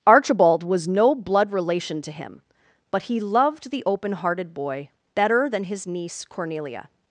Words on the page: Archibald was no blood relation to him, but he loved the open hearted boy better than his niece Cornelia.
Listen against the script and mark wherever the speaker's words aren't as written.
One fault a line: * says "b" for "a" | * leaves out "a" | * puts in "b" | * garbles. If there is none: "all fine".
all fine